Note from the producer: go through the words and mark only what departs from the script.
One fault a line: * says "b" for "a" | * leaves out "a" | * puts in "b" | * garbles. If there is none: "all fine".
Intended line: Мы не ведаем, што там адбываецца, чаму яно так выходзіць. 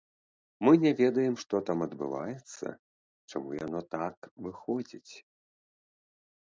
all fine